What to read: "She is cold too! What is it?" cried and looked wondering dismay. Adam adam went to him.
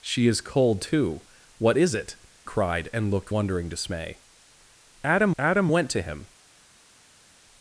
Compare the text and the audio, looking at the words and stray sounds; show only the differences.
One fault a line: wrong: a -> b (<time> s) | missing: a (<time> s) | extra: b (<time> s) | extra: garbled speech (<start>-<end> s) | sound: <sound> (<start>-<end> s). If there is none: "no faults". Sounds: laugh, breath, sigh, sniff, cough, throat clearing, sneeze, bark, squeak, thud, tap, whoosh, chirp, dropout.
no faults